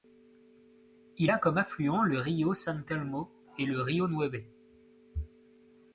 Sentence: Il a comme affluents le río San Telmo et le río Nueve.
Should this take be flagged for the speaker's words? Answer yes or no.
no